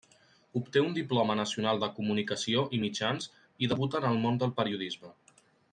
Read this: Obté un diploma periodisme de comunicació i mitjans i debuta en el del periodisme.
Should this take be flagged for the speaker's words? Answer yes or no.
yes